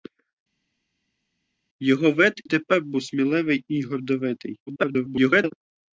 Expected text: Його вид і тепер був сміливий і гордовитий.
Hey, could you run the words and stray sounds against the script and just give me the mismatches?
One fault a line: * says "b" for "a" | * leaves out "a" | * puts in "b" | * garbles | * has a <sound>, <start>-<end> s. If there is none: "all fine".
* leaves out "і"
* garbles